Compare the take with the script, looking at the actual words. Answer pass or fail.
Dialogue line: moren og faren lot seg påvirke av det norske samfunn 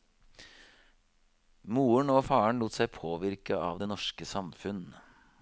pass